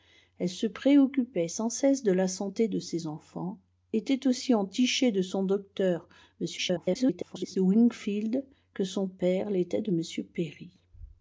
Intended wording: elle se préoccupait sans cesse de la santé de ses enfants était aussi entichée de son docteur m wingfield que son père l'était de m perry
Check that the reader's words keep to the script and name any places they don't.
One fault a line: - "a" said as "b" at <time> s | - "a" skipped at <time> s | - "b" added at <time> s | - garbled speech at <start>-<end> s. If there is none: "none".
- garbled speech at 6.6-7.6 s